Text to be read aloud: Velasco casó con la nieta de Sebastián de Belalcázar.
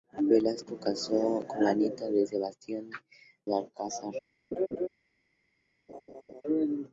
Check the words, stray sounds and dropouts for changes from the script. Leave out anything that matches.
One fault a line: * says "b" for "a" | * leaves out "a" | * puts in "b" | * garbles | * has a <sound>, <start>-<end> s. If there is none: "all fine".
* leaves out "de"
* has a laugh, 4.5-4.9 s
* has a laugh, 5.9-6.4 s